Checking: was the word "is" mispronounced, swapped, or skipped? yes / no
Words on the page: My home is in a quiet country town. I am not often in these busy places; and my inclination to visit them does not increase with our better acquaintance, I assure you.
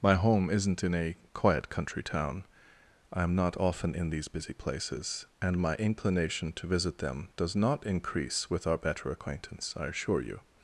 yes